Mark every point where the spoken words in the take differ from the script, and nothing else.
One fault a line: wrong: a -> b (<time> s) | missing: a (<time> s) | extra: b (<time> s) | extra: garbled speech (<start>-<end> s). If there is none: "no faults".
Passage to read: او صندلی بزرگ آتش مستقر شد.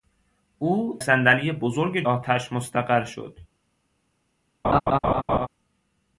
no faults